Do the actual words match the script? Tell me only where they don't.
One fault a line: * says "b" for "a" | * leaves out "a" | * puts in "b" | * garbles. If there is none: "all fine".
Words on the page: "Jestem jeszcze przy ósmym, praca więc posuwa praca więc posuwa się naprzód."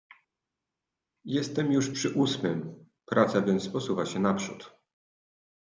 * says "już" for "jeszcze"
* leaves out "praca więc posuwa"